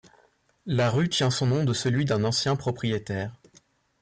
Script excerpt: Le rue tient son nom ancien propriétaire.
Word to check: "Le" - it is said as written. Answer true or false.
false